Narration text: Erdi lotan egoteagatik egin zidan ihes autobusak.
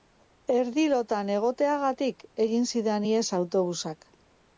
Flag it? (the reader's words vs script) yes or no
no